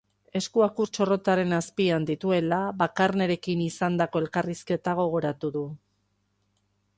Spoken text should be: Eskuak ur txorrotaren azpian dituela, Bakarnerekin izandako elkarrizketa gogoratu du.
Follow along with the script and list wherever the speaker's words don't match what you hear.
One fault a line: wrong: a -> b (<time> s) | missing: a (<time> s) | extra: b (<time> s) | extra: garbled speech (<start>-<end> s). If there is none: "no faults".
no faults